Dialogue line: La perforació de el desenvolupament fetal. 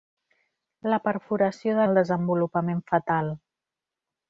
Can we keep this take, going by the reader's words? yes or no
yes